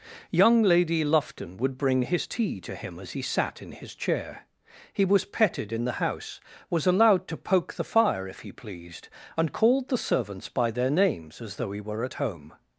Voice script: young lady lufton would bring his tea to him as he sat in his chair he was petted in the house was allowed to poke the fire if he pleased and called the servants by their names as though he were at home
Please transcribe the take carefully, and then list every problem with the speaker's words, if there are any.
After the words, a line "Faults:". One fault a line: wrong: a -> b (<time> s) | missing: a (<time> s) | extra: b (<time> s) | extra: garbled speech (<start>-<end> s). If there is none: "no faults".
young lady lufton would bring his tea to him as he sat in his chair he was petted in the house was allowed to poke the fire if he pleased and called the servants by their names as though he were at home
Faults:
no faults